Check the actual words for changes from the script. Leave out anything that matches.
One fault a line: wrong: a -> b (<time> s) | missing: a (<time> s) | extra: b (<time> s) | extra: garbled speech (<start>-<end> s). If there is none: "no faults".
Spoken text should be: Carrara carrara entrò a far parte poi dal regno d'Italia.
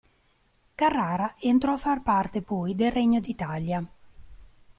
missing: carrara (1.4 s)
wrong: dal -> del (2.7 s)